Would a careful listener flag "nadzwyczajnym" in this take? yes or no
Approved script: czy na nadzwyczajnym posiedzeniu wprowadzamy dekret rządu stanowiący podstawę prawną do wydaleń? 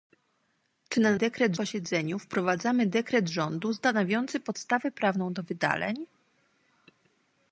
yes